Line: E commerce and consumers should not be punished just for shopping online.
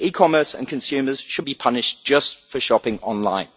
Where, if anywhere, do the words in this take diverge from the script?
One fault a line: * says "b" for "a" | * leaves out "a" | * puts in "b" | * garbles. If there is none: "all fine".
* leaves out "not"